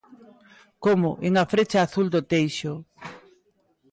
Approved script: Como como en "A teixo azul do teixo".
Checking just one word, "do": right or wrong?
right